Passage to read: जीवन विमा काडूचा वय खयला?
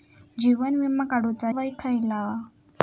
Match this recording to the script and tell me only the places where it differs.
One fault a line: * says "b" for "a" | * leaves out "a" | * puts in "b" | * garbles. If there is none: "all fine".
all fine